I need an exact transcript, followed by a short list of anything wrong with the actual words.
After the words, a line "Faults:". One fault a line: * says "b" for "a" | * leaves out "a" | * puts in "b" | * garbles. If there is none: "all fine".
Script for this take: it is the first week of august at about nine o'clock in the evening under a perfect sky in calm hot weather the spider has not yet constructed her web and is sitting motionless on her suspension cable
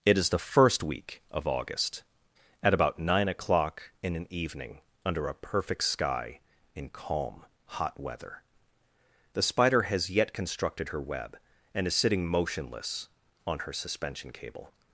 it is the first week of august at about nine o'clock in an evening under a perfect sky in calm hot weather the spider has yet constructed her web and is sitting motionless on her suspension cable
Faults:
* says "an" for "the"
* leaves out "not"